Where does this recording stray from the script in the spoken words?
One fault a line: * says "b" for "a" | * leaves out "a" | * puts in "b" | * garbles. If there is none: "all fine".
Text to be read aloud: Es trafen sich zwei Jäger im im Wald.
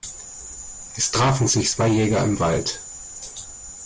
* leaves out "im"